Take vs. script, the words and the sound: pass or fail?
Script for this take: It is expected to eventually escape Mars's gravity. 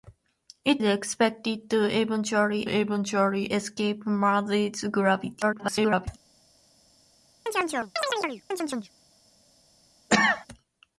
fail